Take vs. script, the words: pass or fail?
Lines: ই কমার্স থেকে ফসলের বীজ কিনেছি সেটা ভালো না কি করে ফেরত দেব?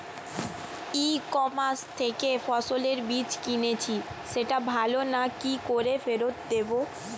pass